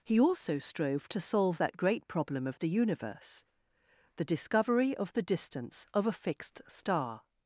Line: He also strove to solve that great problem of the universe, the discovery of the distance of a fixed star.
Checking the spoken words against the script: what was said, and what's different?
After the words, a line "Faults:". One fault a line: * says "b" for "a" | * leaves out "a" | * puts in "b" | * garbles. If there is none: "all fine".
He also strove to solve that great problem of the universe, the discovery of the distance of a fixed star.
Faults:
all fine